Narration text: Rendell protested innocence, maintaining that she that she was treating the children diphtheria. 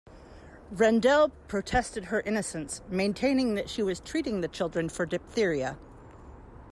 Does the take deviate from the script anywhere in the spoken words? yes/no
yes